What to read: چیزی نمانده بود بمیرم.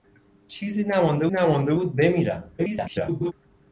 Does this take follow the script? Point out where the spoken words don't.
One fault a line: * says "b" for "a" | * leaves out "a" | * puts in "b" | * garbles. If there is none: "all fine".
* puts in "نمانده"
* garbles